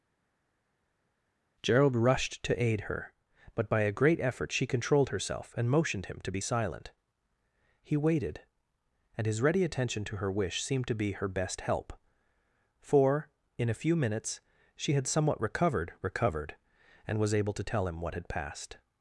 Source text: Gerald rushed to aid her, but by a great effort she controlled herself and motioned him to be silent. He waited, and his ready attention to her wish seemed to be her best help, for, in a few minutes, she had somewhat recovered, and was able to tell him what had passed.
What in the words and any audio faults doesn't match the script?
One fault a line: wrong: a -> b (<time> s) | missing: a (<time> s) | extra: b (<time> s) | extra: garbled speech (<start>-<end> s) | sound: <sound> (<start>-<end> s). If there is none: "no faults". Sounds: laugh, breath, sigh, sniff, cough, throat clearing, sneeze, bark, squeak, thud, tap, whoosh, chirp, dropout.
extra: recovered (16.0 s)